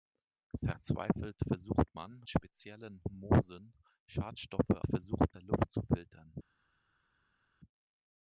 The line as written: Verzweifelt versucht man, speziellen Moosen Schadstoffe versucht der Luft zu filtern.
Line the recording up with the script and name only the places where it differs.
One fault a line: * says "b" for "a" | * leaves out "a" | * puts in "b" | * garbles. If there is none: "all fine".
all fine